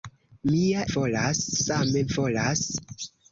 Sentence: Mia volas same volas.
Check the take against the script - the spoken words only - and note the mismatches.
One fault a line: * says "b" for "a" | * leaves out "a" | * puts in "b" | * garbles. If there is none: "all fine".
all fine